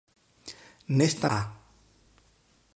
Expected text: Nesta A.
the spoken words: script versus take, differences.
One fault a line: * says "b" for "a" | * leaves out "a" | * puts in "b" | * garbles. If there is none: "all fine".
all fine